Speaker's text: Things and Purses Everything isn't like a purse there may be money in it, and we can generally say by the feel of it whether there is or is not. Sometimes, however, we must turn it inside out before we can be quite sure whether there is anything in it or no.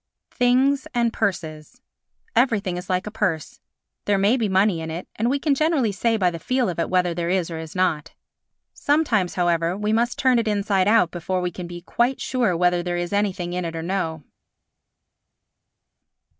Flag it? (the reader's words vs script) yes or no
yes